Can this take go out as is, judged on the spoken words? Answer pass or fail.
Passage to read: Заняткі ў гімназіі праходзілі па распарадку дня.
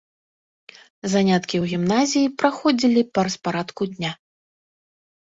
pass